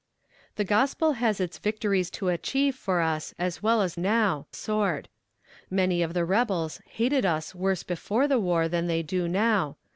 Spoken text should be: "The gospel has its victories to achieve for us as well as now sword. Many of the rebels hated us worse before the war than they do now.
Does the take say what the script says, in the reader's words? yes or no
yes